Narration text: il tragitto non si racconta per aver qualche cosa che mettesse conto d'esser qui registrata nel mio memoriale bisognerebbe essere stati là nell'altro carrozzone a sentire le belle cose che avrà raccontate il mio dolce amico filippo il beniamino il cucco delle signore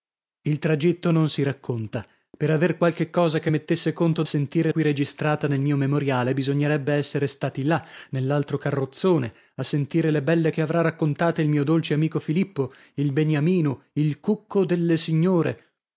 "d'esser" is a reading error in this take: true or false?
true